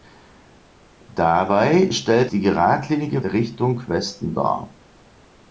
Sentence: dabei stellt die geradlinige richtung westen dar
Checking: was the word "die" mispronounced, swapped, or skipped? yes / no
no